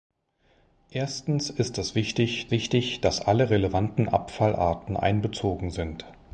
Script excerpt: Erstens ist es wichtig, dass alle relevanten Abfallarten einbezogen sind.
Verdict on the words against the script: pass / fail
fail